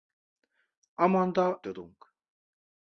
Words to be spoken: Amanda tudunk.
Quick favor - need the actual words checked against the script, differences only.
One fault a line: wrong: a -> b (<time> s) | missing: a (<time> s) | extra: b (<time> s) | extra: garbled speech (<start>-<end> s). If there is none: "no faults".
no faults